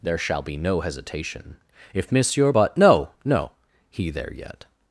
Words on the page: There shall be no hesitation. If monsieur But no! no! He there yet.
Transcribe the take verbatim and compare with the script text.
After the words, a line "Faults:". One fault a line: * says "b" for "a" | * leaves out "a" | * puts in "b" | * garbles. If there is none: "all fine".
There shall be no hesitation. If monsieur But no! no! He there yet.
Faults:
all fine